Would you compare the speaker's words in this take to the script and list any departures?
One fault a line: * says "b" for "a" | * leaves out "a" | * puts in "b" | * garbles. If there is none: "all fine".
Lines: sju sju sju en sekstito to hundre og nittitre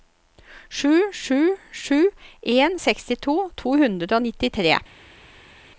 all fine